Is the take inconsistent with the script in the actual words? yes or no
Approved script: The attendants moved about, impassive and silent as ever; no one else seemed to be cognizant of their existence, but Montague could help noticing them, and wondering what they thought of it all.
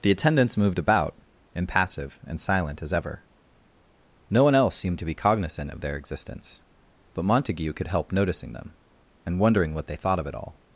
no